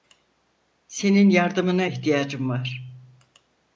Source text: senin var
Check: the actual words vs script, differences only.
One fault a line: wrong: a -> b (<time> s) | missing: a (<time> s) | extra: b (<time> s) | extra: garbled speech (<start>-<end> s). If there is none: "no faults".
extra: yardımına ihtiyacım (1.3 s)